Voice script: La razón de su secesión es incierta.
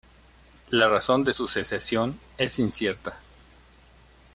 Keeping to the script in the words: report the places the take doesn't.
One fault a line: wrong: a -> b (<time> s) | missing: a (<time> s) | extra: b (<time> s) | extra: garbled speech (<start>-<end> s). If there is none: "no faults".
no faults